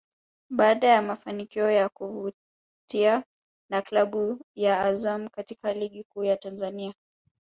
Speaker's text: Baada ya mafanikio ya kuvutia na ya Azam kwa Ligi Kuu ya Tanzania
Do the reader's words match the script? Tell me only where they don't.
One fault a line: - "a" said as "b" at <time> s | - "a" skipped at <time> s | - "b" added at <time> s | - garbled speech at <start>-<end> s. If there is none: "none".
- "klabu" added at 3.8 s
- "kwa" said as "katika" at 5.3 s